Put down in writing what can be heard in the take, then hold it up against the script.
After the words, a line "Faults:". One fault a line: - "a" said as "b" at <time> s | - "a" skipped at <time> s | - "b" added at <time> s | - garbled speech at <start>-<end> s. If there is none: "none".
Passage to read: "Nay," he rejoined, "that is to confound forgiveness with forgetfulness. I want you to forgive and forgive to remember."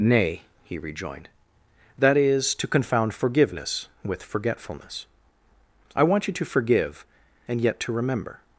"Nay," he rejoined, "that is to confound forgiveness with forgetfulness. I want you to forgive and yet to remember."
Faults:
- "forgive" said as "yet" at 7.6 s